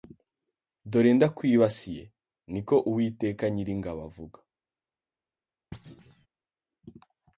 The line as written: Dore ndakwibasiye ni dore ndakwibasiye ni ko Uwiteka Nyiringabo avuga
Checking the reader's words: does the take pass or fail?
fail